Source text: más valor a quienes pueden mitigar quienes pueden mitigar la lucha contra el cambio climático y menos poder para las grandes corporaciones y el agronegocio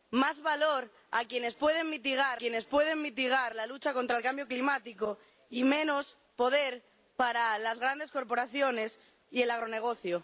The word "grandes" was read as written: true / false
true